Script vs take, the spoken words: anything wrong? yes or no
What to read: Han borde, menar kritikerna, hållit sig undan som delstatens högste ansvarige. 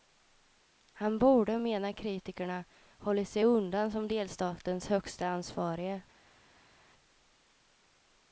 no